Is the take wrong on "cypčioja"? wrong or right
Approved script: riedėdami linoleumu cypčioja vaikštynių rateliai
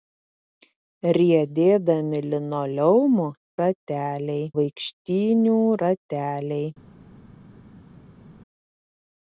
wrong